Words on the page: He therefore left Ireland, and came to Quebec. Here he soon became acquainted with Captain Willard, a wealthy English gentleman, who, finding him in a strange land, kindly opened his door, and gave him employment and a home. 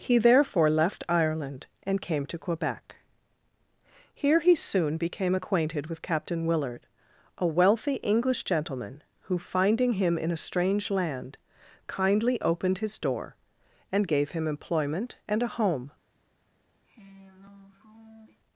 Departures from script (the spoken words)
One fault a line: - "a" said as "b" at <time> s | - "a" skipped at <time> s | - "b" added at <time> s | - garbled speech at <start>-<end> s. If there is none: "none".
none